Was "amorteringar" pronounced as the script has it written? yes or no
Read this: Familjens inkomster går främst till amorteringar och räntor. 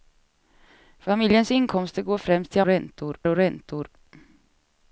no